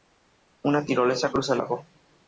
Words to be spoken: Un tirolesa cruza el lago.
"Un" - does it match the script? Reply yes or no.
no